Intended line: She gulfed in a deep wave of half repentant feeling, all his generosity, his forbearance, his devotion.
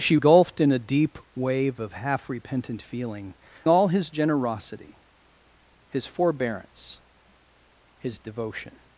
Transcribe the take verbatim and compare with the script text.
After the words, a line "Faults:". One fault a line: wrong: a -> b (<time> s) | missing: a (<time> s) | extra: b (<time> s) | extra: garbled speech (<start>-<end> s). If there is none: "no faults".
She gulfed in a deep wave of half repentant feeling, all his generosity, his forbearance, his devotion.
Faults:
no faults